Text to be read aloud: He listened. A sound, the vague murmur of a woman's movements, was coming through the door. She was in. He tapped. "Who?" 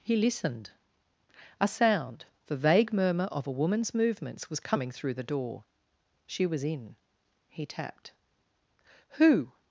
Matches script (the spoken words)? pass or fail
pass